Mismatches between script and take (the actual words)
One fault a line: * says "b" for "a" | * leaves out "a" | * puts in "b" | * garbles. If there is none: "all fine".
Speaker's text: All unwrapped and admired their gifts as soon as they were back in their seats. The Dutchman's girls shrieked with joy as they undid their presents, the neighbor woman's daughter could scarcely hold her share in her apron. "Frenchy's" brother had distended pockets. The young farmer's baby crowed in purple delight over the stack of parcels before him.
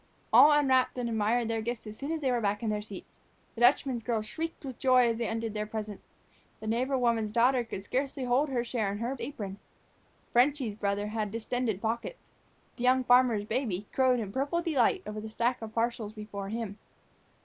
all fine